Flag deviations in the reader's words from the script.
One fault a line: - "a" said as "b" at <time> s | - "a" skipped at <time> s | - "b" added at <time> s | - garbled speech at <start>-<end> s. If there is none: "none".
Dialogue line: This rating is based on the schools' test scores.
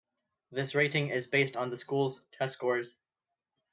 none